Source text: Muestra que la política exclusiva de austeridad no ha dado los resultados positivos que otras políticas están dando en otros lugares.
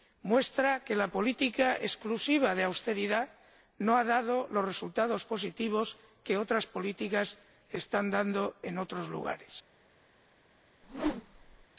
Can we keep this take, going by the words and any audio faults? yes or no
no